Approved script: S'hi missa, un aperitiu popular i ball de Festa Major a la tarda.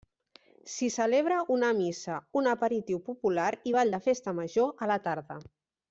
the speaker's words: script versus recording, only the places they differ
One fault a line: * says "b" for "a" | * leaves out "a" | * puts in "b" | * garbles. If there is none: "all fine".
* puts in "celebra una"